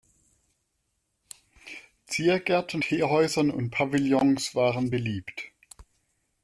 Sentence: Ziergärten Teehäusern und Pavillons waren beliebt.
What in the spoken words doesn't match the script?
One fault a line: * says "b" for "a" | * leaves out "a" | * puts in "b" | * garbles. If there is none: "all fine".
all fine